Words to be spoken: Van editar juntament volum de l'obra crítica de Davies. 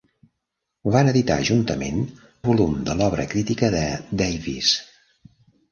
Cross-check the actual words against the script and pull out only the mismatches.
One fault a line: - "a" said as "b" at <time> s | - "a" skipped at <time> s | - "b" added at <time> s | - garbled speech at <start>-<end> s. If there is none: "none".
none